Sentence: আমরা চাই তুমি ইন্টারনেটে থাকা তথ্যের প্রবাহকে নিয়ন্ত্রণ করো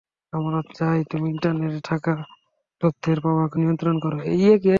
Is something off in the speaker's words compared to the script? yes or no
no